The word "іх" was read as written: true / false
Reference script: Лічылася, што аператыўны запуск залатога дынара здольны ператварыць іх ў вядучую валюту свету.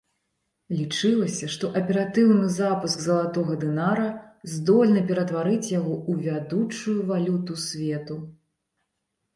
false